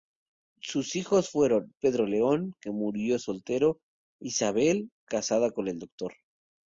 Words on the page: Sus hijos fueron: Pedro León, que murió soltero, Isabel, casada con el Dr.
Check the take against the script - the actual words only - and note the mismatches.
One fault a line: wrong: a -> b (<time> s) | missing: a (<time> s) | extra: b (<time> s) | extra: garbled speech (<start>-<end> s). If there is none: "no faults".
no faults